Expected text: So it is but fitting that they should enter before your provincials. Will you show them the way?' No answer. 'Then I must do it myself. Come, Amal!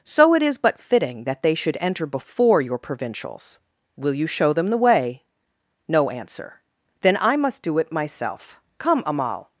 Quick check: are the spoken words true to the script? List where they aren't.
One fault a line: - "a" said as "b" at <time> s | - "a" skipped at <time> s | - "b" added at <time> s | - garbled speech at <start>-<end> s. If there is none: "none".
none